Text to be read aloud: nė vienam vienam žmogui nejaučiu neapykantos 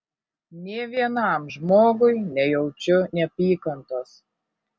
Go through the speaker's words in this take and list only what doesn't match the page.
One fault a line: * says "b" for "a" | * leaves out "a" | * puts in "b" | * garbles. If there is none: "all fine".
* leaves out "vienam"